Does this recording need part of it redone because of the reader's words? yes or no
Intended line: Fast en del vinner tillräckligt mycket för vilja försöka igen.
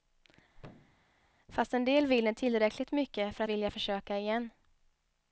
no